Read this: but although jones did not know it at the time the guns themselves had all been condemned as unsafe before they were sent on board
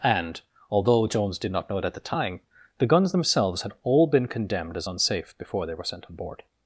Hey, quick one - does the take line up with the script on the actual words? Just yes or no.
no